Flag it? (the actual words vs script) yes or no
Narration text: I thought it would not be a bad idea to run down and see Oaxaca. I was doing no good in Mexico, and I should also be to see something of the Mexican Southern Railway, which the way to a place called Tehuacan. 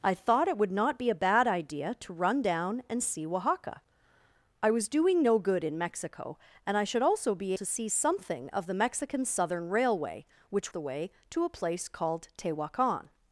no